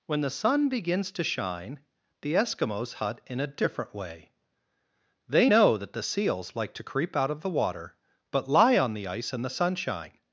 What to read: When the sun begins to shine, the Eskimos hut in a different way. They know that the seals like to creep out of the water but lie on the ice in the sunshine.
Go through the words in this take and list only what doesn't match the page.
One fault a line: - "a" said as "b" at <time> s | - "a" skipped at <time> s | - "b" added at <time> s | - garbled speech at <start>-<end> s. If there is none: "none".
none